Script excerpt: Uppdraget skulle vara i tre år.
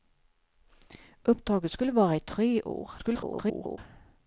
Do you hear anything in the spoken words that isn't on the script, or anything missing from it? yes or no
yes